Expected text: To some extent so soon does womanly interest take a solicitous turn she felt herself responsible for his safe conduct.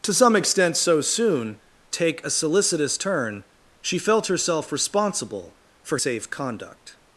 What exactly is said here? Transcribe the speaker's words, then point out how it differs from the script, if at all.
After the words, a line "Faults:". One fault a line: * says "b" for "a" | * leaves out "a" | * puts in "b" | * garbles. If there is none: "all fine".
To some extent so soon take a solicitous turn she felt herself responsible for safe conduct.
Faults:
* leaves out "does womanly interest"
* leaves out "his"